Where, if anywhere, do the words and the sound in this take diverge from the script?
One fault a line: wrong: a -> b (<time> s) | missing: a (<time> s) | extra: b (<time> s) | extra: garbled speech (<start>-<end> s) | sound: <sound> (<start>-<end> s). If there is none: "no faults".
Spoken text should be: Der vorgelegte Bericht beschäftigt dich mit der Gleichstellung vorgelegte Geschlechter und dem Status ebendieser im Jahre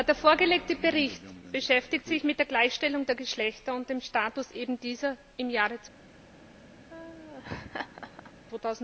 wrong: dich -> sich (2.1 s)
wrong: vorgelegte -> der (3.0 s)
sound: laugh (6.9-8.3 s)